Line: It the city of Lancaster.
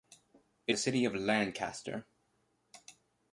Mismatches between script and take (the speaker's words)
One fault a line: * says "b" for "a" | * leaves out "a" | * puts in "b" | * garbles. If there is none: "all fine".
all fine